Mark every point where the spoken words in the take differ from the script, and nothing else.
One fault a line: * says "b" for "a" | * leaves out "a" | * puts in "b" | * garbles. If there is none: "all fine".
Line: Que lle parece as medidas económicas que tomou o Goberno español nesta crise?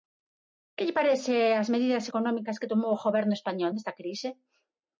all fine